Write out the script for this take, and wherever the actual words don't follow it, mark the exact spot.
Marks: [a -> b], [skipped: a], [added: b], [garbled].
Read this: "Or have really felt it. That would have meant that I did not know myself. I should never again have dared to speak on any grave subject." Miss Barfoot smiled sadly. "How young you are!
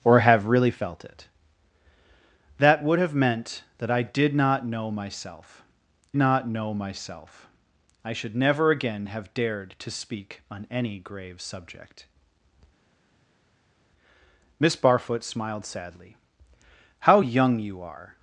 "Or have really felt it. That would have meant that I did not know myself. [added: not know myself] I should never again have dared to speak on any grave subject." Miss Barfoot smiled sadly. "How young you are!